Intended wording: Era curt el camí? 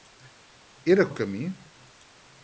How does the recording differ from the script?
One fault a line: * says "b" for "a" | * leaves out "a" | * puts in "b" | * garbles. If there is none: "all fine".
* leaves out "curt"